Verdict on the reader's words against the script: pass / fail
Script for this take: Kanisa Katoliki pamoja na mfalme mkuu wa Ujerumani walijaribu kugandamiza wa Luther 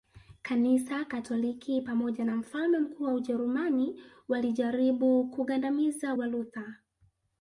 pass